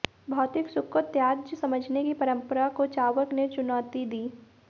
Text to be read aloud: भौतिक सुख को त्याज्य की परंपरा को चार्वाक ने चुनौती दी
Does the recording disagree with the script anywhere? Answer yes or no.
yes